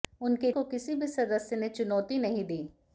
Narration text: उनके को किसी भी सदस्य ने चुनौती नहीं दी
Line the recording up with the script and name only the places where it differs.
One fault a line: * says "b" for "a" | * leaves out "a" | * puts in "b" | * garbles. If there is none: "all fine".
all fine